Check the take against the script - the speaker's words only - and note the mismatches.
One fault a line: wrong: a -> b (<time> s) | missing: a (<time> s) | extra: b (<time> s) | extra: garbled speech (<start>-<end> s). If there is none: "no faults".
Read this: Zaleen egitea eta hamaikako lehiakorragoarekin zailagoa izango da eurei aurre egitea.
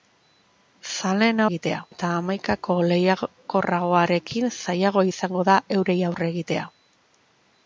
no faults